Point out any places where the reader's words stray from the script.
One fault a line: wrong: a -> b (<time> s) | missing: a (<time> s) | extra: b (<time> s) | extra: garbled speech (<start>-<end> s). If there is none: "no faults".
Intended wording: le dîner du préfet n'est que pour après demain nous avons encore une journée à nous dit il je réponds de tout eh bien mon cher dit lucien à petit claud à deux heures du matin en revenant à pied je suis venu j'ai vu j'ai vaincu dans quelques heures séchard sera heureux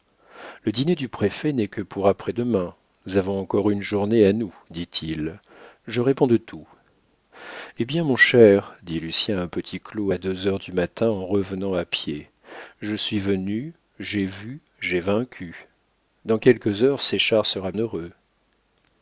no faults